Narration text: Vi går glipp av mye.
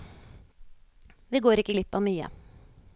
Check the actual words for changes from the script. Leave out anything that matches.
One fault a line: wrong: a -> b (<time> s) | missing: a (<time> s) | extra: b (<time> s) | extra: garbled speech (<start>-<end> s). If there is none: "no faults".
extra: ikke (1.6 s)